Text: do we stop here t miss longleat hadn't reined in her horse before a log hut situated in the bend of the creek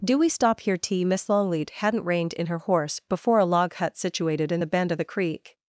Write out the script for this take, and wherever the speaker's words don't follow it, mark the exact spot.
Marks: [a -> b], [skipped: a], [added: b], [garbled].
do we stop here t miss longleat hadn't reined in her horse before a log hut situated in the bend of the creek